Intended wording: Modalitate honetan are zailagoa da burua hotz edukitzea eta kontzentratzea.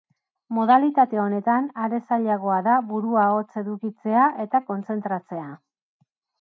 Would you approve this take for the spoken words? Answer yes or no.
yes